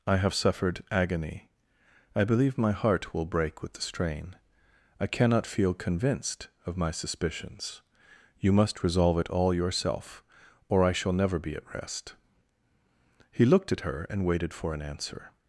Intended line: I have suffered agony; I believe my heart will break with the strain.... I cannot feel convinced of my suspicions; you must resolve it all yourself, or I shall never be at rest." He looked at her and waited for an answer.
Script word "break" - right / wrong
right